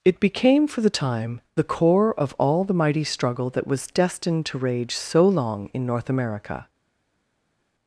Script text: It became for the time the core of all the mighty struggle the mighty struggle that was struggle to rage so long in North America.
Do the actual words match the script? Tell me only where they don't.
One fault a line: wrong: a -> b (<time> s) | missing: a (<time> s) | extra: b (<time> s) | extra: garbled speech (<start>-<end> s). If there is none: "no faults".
missing: the mighty struggle (3.5 s)
wrong: struggle -> destined (3.9 s)